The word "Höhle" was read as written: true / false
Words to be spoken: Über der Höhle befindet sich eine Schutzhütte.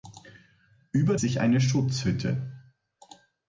false